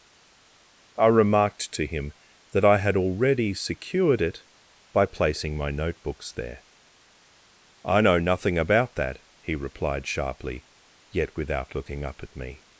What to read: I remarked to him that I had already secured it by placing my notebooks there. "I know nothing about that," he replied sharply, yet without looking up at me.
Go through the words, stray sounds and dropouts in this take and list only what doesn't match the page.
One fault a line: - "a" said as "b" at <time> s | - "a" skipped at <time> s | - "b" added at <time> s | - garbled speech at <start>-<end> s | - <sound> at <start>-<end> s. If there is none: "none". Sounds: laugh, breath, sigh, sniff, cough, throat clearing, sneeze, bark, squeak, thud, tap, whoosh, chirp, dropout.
none